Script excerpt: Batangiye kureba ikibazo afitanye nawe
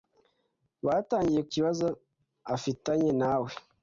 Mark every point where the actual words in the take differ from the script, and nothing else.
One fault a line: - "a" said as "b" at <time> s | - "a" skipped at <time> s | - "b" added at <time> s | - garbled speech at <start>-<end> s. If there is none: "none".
- "kureba" skipped at 1.4 s